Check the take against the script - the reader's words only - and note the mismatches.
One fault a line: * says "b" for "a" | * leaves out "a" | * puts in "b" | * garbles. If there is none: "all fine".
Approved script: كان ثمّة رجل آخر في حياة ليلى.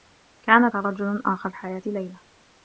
* leaves out "ثمّة"
* leaves out "في"